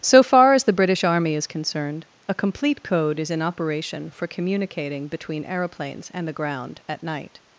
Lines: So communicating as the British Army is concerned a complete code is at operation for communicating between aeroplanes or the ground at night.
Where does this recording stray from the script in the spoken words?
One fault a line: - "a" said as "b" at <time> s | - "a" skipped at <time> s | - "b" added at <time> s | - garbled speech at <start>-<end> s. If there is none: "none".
- "communicating" said as "far" at 0.2 s
- "at" said as "in" at 3.3 s
- "or" said as "and" at 6.1 s